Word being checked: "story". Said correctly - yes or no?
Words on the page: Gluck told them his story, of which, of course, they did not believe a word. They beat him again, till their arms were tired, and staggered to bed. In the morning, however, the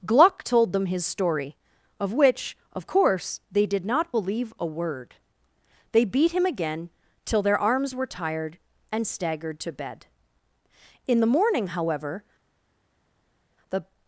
yes